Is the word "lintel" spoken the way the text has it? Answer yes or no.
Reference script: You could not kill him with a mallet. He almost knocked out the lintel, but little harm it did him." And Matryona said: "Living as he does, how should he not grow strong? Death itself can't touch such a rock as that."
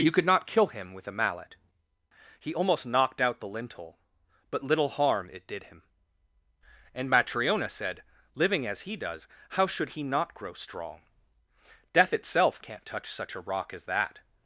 yes